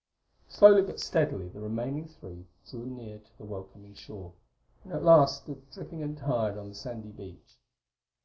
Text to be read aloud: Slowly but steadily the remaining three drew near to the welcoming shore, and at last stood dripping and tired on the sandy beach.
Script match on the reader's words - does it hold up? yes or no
yes